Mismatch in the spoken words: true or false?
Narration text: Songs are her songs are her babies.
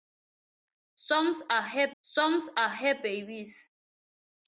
false